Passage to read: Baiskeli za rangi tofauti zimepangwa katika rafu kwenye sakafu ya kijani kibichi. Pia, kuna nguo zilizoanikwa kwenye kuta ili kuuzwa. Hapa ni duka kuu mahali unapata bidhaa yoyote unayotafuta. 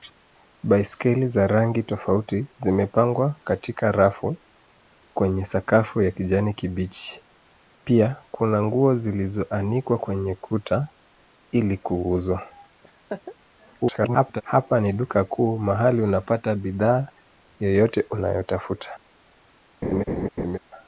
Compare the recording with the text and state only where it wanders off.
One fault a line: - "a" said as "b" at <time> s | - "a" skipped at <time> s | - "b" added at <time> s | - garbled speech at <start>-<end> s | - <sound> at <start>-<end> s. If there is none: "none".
- laugh at 12.8-13.4 s
- garbled speech at 13.8-14.4 s
- laugh at 19.8-20.6 s